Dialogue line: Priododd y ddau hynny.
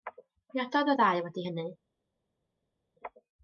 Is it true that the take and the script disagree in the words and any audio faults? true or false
true